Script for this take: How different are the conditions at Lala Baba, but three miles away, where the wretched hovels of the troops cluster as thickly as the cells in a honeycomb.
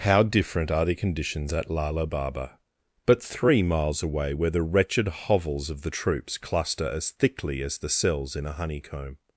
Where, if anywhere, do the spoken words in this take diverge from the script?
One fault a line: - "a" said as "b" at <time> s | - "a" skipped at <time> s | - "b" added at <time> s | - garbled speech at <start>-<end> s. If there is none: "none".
none